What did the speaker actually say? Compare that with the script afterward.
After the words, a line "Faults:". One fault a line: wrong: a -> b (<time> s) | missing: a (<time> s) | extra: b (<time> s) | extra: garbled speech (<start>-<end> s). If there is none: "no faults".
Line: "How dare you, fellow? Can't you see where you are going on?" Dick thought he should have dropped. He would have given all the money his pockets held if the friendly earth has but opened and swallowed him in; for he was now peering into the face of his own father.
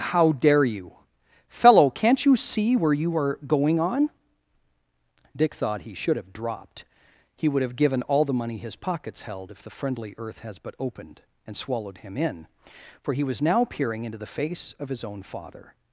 "How dare you, fellow? Can't you see where you are going on?" Dick thought he should have dropped. He would have given all the money his pockets held if the friendly earth has but opened and swallowed him in; for he was now peering into the face of his own father.
Faults:
no faults